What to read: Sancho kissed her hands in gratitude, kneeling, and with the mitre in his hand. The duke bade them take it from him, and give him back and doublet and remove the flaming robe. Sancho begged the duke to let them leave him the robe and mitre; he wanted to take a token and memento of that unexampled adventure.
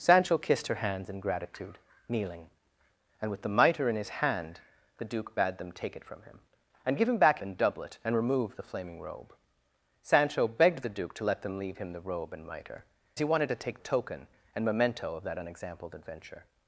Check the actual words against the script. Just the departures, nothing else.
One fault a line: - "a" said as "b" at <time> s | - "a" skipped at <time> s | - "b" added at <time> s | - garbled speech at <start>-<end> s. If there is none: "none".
none